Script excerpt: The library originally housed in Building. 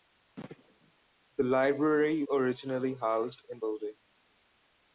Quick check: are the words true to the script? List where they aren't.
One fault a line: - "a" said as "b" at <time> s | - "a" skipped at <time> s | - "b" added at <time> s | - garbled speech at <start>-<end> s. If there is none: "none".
none